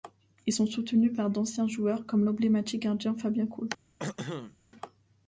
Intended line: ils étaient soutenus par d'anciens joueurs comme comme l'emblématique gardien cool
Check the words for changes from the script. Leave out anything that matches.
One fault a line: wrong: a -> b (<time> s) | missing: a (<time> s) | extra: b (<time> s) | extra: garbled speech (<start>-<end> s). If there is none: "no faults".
wrong: étaient -> sont (0.5 s)
missing: comme (2.2 s)
extra: fabien (3.1 s)